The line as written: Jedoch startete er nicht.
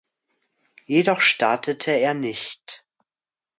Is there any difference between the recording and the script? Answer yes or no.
no